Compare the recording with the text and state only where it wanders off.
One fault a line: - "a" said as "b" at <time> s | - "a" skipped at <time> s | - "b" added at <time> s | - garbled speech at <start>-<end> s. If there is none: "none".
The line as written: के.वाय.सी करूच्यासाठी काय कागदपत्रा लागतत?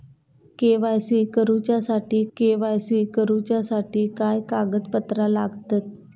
- "के.वाय.सी करूच्यासाठी" added at 2.4 s